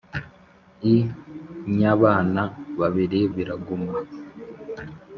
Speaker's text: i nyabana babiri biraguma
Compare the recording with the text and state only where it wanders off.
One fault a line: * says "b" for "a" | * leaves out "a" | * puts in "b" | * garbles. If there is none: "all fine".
all fine